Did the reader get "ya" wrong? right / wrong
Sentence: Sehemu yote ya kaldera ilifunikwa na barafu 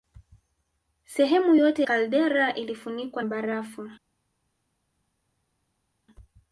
wrong